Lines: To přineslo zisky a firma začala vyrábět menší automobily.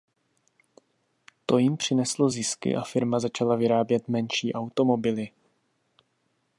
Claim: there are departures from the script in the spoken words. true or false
true